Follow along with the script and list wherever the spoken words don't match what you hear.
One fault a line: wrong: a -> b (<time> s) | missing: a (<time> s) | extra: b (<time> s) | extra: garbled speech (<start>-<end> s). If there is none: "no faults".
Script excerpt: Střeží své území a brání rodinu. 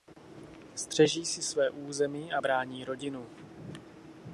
extra: si (1.2 s)